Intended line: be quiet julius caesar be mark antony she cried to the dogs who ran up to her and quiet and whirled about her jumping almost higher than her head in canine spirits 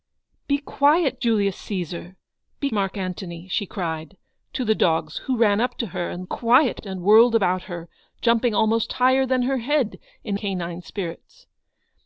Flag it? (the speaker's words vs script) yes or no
no